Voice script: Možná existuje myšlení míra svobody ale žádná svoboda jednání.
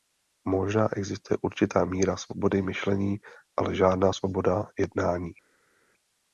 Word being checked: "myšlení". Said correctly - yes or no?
no